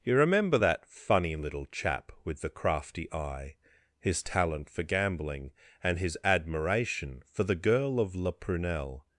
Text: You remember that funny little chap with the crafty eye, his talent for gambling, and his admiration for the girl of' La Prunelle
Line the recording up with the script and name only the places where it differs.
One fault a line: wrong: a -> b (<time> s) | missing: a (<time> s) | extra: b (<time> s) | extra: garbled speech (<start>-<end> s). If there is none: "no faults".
no faults